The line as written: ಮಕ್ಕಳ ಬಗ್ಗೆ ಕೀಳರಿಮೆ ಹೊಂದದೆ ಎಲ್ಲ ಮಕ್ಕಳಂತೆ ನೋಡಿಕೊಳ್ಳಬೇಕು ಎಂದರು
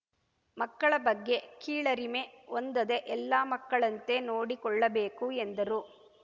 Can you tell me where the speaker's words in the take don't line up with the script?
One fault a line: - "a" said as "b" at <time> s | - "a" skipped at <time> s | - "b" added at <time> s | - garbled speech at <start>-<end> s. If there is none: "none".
none